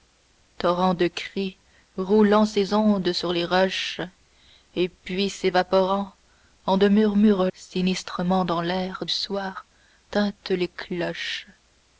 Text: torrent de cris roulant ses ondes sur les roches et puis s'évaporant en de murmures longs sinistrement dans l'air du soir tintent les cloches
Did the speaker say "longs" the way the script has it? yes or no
no